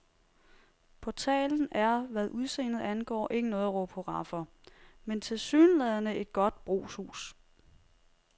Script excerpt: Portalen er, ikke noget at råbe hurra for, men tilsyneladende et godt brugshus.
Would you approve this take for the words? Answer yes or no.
no